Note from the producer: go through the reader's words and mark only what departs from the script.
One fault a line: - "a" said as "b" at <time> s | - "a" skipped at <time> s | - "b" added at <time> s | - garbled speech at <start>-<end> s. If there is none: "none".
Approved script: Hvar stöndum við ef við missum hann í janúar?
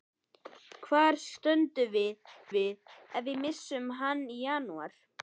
- "við" added at 2.6 s